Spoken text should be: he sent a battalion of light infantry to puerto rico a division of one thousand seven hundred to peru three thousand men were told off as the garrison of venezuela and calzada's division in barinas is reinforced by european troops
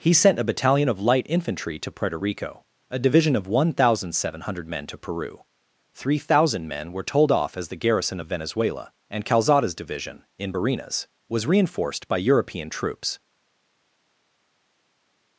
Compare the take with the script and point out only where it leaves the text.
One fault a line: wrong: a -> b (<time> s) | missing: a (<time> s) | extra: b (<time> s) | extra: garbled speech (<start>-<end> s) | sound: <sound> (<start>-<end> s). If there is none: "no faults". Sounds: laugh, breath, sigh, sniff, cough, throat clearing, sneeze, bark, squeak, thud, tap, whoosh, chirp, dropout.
extra: men (4.7 s)
wrong: is -> was (11.3 s)